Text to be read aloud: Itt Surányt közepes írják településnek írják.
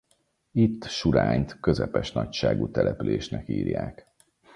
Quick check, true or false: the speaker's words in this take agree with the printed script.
false